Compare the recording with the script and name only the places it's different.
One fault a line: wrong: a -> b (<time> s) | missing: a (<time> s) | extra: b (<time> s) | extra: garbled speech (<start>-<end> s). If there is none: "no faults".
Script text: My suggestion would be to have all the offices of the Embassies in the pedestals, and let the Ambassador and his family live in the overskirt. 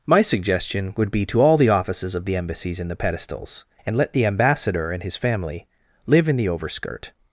missing: have (1.4 s)